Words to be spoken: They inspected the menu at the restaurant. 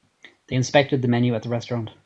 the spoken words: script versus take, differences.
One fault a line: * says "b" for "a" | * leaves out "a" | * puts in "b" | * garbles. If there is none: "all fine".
all fine